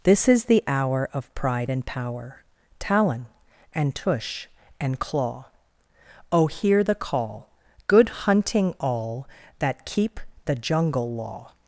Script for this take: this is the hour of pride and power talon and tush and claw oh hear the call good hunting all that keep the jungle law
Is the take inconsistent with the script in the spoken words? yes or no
no